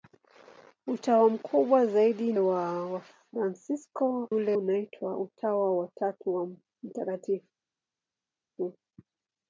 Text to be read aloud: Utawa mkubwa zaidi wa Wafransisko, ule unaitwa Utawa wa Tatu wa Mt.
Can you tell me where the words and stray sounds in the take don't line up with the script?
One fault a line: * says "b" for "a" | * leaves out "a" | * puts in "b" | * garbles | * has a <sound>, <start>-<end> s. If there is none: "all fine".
all fine